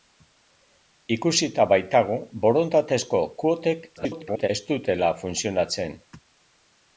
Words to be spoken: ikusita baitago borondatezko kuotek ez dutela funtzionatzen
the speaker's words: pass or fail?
fail